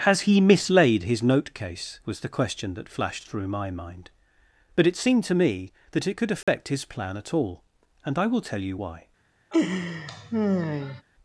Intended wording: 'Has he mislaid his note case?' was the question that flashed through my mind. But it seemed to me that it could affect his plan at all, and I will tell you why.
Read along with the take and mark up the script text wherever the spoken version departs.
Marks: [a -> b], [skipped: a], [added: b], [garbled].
'Has he mislaid his note case?' was the question that flashed through my mind. But it seemed to me that it could affect his plan at all, and I will tell you why.